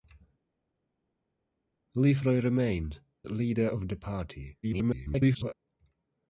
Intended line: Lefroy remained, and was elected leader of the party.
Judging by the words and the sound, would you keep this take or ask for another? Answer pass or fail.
fail